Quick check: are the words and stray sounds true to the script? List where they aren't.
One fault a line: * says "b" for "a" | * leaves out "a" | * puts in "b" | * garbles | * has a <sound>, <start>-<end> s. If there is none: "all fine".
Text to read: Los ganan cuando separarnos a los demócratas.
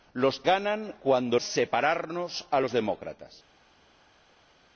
all fine